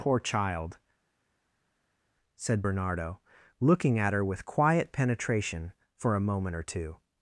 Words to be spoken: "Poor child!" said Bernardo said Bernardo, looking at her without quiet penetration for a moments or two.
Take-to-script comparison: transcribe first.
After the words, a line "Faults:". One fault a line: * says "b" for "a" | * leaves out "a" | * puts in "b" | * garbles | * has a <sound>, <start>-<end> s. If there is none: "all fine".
"Poor child!" said Bernardo, looking at her with quiet penetration for a moment or two.
Faults:
* leaves out "said Bernardo"
* says "with" for "without"
* says "moment" for "moments"